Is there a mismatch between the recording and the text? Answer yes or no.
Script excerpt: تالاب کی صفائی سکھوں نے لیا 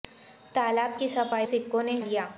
no